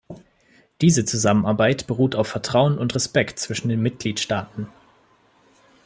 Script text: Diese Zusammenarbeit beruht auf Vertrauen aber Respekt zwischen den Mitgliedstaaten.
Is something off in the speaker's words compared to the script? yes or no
yes